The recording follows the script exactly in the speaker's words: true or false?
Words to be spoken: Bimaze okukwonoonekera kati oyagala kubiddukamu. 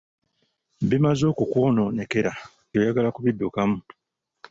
false